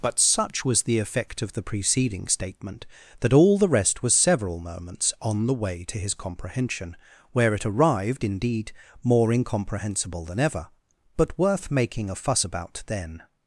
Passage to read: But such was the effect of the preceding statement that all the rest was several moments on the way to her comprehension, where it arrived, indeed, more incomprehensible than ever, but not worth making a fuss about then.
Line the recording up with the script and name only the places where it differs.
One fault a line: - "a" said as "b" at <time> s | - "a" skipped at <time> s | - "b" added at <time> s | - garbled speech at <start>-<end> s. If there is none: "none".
- "her" said as "his" at 6.0 s
- "not" skipped at 11.4 s